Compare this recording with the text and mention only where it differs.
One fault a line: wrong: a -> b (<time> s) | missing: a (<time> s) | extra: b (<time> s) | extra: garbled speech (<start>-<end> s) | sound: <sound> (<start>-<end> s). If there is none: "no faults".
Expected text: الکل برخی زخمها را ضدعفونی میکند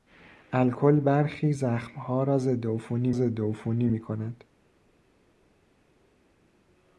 extra: ضدعفونی (3.1 s)